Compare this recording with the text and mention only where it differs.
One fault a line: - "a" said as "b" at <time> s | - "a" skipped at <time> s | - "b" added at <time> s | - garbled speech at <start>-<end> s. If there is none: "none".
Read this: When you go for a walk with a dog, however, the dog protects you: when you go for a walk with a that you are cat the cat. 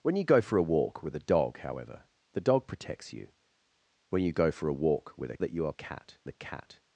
none